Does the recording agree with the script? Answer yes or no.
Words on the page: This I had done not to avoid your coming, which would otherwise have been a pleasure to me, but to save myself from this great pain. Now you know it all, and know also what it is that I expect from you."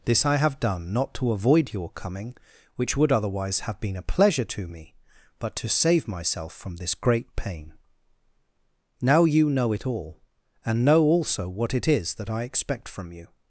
no